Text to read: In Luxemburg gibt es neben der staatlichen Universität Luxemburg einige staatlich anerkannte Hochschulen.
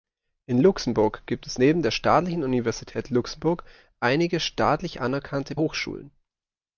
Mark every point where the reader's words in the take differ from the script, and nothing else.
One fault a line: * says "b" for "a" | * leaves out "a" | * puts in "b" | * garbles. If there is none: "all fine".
all fine